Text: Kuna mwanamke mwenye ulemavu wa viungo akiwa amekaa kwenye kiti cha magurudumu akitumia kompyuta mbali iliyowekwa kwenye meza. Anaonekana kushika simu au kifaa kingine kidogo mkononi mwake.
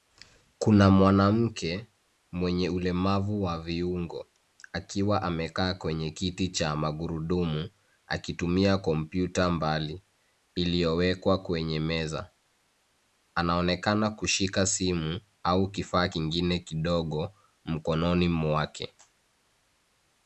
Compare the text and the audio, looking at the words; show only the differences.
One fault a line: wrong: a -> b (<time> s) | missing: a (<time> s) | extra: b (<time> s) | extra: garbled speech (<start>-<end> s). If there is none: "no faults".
no faults